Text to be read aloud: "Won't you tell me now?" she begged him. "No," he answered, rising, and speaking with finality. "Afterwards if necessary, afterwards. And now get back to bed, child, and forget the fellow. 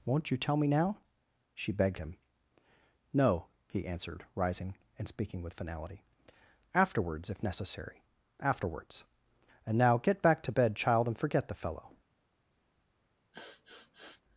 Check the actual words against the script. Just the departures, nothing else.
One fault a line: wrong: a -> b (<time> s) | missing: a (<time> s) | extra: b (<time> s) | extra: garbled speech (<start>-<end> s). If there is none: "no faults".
no faults